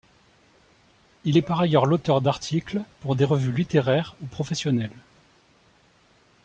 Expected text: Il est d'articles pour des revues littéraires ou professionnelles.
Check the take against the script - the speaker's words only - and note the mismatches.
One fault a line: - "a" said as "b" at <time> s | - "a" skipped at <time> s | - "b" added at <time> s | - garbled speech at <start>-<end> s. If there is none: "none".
- "par ailleurs l'auteur" added at 1.4 s